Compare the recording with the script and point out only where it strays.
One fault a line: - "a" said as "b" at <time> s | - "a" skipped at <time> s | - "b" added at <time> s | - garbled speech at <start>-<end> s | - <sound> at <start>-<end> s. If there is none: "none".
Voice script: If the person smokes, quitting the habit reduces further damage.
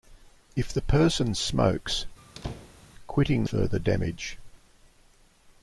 - squeak at 2.2-2.9 s
- "the habit reduces" skipped at 3.4 s